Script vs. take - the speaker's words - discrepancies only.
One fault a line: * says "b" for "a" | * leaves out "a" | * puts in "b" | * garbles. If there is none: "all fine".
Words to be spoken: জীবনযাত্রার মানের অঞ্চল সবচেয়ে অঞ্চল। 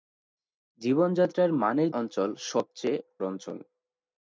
all fine